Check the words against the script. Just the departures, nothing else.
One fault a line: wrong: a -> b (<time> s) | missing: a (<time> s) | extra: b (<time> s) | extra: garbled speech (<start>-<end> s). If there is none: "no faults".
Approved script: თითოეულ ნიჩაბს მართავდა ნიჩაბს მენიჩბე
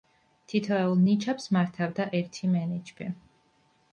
wrong: ნიჩაბს -> ერთი (2.2 s)